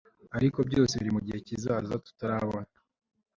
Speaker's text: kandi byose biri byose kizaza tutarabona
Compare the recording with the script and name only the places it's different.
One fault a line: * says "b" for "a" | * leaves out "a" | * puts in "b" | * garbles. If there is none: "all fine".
* says "ariko" for "kandi"
* says "mugihe" for "byose"